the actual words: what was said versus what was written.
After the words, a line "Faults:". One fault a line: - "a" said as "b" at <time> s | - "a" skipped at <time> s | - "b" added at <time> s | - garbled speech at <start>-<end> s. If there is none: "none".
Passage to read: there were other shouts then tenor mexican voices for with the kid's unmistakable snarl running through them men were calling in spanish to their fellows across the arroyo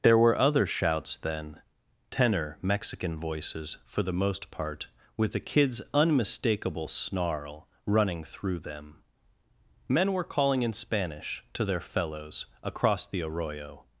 there were other shouts then tenor mexican voices for the most part with the kid's unmistakable snarl running through them men were calling in spanish to their fellows across the arroyo
Faults:
- "the most part" added at 4.0 s